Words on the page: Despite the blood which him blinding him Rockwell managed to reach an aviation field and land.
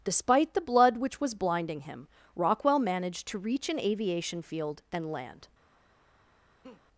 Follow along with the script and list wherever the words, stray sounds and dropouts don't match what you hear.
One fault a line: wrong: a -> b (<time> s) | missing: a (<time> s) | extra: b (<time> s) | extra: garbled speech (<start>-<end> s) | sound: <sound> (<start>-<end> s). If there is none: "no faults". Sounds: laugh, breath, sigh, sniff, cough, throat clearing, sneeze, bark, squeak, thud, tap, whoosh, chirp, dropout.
wrong: him -> was (1.2 s)
sound: laugh (6.6-6.8 s)